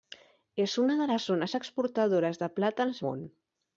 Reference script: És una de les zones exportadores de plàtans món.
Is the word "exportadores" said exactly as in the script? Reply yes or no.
yes